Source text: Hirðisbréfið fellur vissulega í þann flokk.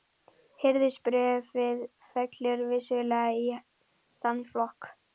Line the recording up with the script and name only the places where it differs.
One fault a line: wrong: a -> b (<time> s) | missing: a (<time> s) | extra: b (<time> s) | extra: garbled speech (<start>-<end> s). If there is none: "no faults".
no faults